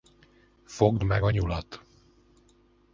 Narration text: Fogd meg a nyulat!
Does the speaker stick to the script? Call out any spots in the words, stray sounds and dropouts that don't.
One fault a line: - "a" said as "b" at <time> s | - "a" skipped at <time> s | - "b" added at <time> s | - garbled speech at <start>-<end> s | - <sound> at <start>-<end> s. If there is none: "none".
none